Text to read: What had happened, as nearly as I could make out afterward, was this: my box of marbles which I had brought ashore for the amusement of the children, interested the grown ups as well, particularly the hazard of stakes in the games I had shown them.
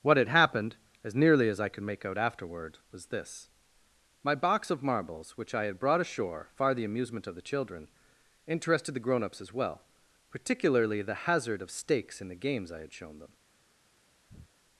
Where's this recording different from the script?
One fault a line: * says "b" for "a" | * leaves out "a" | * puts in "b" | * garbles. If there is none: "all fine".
* says "far" for "for"